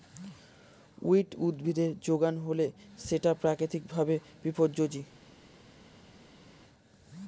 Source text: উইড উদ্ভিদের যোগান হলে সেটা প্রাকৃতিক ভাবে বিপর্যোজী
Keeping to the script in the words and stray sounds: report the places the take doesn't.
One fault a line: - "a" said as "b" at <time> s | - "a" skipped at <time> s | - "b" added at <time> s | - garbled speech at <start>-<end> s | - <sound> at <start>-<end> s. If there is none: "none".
none